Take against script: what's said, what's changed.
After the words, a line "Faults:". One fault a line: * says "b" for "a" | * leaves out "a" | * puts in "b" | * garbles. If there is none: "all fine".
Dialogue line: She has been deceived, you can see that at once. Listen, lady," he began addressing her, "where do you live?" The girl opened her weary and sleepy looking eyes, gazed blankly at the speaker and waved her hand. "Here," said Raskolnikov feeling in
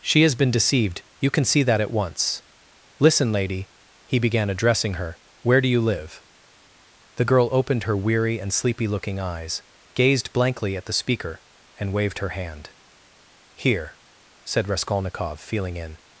She has been deceived, you can see that at once. Listen, lady," he began addressing her, "where do you live?" The girl opened her weary and sleepy looking eyes, gazed blankly at the speaker and waved her hand. "Here," said Raskolnikov feeling in
Faults:
all fine